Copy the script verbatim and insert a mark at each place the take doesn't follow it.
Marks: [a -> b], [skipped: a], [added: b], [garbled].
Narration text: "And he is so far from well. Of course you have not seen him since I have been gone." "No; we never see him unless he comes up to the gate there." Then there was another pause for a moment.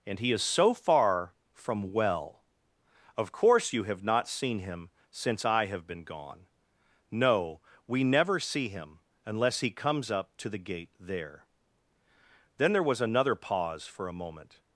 "And he is so far from well. Of course you have not seen him since I have been gone." "No; we never see him unless he comes up to the gate there." Then there was another pause for a moment.